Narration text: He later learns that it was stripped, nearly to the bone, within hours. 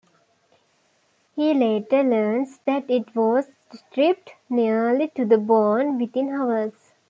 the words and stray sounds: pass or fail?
pass